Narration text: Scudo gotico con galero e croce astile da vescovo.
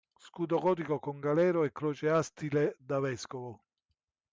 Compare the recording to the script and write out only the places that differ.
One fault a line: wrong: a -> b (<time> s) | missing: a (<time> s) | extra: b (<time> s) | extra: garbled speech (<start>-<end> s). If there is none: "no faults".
no faults